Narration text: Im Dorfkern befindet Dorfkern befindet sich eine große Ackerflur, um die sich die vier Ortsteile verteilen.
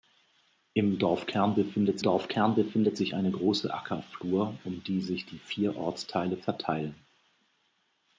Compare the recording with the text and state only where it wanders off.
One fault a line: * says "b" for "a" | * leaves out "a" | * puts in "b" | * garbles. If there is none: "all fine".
all fine